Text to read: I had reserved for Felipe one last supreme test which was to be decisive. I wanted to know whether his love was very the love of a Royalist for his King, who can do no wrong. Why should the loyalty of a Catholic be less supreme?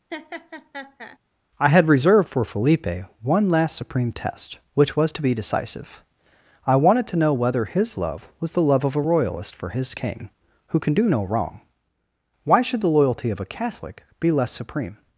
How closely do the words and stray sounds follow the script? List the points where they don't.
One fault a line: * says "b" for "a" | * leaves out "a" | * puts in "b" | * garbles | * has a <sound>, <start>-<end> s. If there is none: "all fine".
* has a laugh, 0.1-1.2 s
* leaves out "very"